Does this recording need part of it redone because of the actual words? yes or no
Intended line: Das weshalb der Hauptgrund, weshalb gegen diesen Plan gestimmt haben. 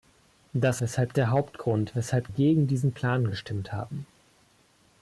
no